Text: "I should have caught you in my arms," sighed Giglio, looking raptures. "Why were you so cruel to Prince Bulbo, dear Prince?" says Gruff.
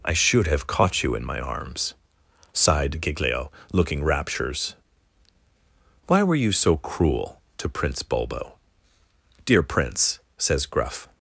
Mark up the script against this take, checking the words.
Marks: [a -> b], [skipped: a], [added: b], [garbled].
"I should have caught you in my arms," sighed Giglio, looking raptures. "Why were you so cruel to Prince Bulbo, dear Prince?" says Gruff.